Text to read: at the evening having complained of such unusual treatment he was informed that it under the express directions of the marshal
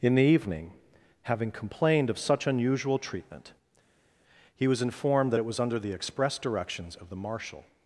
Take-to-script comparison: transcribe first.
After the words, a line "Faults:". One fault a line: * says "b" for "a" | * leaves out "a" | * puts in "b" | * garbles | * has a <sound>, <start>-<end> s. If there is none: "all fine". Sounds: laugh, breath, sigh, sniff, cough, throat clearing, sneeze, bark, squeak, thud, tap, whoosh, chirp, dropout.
in the evening having complained of such unusual treatment he was informed that it was under the express directions of the marshal
Faults:
* says "in" for "at"
* puts in "was"